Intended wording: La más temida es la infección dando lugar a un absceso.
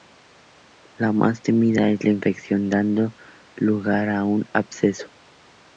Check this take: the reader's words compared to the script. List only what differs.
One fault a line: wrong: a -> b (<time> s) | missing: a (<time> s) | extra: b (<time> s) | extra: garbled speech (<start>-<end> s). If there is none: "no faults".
no faults